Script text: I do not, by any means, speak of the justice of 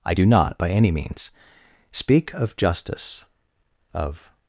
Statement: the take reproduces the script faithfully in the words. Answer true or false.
false